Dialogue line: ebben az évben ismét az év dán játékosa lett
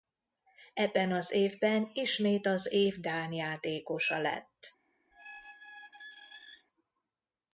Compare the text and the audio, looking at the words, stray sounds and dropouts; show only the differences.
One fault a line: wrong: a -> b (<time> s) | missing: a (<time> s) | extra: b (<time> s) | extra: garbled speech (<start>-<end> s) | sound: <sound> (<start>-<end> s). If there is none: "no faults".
sound: squeak (5.1-6.7 s)